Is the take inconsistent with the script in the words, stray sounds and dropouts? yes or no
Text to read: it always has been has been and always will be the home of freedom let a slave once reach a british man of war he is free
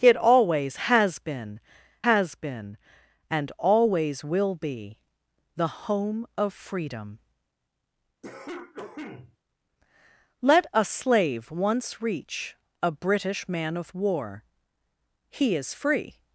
yes